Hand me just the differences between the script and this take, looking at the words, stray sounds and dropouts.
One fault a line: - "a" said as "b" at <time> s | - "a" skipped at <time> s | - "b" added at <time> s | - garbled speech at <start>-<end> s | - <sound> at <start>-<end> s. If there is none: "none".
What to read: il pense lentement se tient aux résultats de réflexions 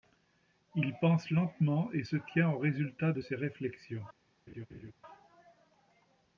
- "et" added at 1.9 s
- "ses" added at 3.2 s
- laugh at 4.5-4.9 s